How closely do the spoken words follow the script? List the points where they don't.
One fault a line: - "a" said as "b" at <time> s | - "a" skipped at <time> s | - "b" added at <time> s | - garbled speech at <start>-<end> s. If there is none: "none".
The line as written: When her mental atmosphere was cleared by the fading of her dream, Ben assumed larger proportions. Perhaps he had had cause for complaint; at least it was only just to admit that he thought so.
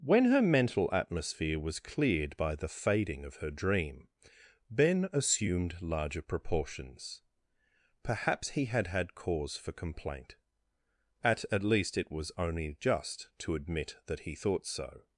- "at" added at 11.5 s